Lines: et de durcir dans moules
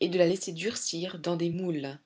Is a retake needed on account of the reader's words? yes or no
yes